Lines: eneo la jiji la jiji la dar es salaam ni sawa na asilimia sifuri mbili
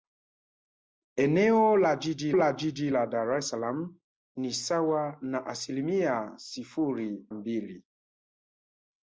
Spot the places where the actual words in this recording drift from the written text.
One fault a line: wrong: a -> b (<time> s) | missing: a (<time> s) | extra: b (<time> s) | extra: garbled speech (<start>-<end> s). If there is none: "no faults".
no faults